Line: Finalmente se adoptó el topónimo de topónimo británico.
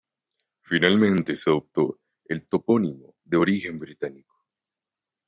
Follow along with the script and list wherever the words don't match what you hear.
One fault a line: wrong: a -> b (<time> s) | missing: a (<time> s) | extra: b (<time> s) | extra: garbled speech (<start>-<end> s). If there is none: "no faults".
wrong: topónimo -> origen (3.4 s)